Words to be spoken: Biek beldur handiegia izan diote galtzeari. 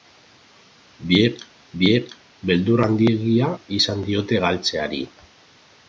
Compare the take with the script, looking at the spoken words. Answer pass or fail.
fail